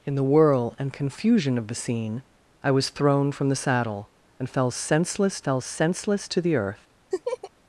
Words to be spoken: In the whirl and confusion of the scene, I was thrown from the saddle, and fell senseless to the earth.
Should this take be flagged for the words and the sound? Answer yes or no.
yes